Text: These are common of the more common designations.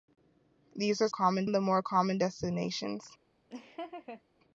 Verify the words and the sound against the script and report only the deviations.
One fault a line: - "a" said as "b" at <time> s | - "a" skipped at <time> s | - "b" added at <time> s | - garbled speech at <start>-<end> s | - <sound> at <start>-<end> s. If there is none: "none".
- laugh at 3.5-4.2 s